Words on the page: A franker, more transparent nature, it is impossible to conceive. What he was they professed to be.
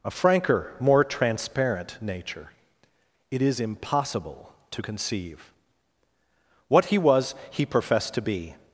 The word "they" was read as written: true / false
false